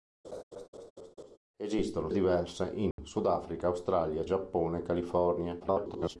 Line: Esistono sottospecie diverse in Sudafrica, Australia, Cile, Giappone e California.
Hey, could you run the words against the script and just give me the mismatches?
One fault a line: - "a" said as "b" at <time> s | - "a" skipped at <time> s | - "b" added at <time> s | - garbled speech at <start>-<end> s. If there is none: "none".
- "sottospecie" skipped at 2.1 s
- "Cile" skipped at 4.3 s
- garbled speech at 5.6-6.2 s